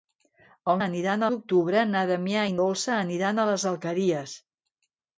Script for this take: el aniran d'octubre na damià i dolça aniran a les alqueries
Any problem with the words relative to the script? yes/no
no